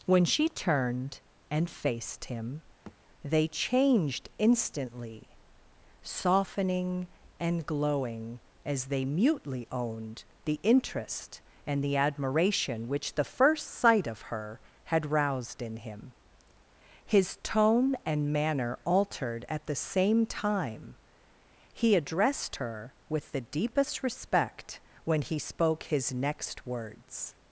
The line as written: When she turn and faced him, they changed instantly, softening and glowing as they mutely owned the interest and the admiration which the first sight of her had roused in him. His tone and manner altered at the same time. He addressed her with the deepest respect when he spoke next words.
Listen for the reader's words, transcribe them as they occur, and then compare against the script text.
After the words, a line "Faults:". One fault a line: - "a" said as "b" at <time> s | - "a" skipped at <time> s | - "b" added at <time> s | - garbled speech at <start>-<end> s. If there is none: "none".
When she turned and faced him, they changed instantly, softening and glowing as they mutely owned the interest and the admiration which the first sight of her had roused in him. His tone and manner altered at the same time. He addressed her with the deepest respect when he spoke his next words.
Faults:
- "turn" said as "turned" at 0.5 s
- "his" added at 25.8 s